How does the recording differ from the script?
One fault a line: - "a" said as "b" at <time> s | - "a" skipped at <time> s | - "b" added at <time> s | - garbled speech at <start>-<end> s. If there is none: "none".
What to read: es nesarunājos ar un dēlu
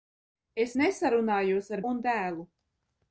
none